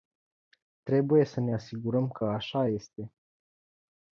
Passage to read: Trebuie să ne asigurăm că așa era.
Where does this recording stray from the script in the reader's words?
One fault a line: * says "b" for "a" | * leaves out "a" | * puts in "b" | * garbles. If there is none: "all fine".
* says "este" for "era"